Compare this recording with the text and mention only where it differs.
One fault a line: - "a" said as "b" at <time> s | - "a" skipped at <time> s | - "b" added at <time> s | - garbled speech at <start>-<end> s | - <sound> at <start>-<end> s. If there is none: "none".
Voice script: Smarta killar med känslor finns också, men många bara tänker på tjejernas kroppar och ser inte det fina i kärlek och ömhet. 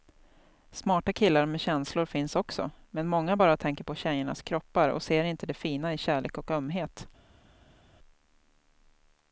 none